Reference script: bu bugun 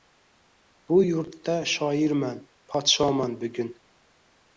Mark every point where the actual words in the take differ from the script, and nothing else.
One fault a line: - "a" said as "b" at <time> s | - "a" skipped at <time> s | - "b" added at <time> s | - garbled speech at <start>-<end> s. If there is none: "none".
- "yurtda shoirman podshoman" added at 1.0 s